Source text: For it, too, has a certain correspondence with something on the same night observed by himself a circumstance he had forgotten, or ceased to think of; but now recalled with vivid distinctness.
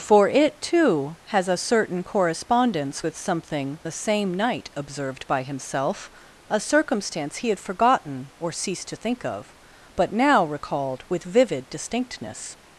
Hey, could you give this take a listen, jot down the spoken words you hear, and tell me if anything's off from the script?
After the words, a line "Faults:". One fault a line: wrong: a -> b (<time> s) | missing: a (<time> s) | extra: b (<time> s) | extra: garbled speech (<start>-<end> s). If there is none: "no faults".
For it, too, has a certain correspondence with something the same night observed by himself a circumstance he had forgotten, or ceased to think of; but now recalled with vivid distinctness.
Faults:
missing: on (3.8 s)